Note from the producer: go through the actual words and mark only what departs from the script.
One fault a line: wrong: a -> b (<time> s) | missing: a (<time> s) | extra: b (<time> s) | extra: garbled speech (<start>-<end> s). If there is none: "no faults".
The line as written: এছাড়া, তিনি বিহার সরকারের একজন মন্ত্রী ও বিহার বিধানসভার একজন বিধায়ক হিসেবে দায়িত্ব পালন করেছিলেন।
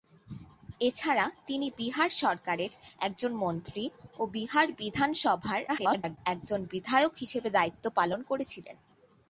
extra: garbled speech (5.7-6.2 s)